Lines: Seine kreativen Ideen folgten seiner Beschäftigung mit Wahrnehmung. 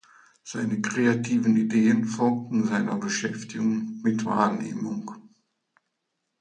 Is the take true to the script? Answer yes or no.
yes